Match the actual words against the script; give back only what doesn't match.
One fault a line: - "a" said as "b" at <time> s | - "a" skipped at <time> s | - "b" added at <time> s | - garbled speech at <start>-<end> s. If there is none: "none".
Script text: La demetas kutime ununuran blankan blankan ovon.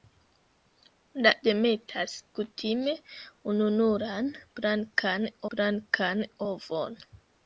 none